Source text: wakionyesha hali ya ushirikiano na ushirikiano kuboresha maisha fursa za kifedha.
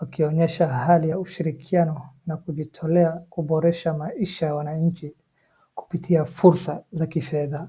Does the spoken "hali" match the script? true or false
true